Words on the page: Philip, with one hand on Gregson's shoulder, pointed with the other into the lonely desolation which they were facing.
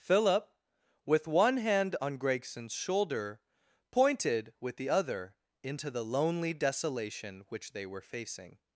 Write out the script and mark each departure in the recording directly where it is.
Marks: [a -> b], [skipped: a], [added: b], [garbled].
Philip, with one hand on Gregson's shoulder, pointed with the other into the lonely desolation which they were facing.